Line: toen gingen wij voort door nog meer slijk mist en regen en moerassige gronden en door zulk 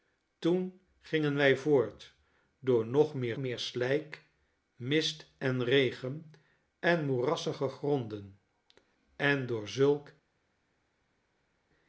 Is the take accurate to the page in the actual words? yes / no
no